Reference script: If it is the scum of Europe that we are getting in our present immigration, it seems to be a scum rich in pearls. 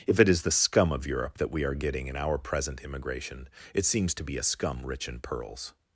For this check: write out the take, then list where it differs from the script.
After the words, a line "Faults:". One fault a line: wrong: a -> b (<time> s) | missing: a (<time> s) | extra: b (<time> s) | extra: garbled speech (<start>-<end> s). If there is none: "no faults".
If it is the scum of Europe that we are getting in our present immigration, it seems to be a scum rich in pearls.
Faults:
no faults